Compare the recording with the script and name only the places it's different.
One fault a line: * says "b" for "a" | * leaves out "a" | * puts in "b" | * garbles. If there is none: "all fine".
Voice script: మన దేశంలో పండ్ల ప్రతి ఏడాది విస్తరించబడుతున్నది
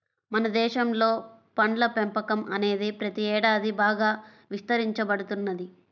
* puts in "పెంపకం అనేది"
* puts in "బాగా"